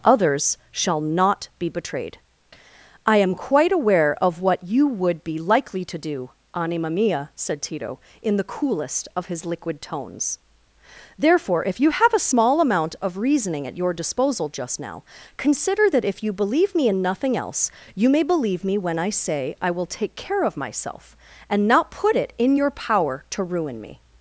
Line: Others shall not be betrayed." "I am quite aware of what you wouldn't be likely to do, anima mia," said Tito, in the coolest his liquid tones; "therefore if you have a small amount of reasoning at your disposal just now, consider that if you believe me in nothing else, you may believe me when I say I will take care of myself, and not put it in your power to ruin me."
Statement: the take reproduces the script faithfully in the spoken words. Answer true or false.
false